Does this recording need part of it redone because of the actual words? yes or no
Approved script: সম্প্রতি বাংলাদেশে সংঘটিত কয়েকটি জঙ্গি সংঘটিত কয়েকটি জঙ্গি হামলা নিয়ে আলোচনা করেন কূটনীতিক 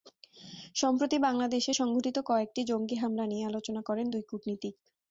yes